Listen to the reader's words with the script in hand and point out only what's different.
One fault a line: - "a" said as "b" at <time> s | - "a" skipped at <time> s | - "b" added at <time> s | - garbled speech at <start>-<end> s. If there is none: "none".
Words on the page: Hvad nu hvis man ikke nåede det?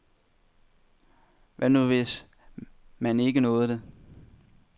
none